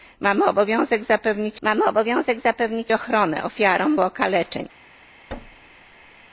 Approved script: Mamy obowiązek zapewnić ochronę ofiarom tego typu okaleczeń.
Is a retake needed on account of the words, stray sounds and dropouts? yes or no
yes